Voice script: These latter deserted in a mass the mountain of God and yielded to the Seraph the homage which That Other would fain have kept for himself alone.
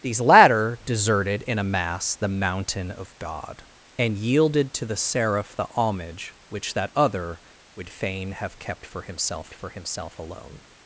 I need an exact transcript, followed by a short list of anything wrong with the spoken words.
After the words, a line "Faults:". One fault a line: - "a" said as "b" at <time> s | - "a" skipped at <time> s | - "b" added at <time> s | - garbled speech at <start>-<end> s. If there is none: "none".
These latter deserted in a mass the mountain of God and yielded to the Seraph the homage which That Other would fain have kept for himself for himself alone.
Faults:
- "for himself" added at 9.5 s